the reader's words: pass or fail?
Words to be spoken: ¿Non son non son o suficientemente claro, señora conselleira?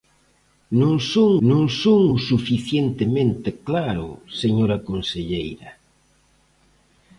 pass